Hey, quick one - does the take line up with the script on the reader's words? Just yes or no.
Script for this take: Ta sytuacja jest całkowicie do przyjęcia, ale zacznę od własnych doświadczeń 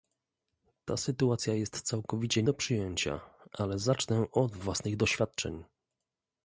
yes